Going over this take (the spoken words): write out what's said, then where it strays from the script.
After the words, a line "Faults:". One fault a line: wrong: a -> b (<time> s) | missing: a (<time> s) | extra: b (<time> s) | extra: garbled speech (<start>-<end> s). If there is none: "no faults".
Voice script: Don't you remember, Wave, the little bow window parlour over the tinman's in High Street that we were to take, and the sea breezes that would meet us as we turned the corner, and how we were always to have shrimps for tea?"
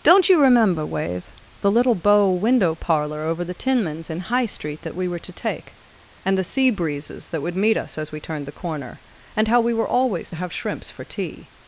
Don't you remember, Wave, the little bow window parlour over the tinman's in High Street that we were to take, and the sea breezes that would meet us as we turned the corner, and how we were always to have shrimps for tea?"
Faults:
no faults